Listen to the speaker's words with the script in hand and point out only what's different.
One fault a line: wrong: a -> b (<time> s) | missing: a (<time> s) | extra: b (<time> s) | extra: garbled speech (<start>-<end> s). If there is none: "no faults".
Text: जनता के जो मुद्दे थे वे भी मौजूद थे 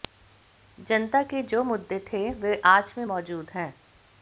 extra: आज (2.6 s)
wrong: थे -> हैं (3.5 s)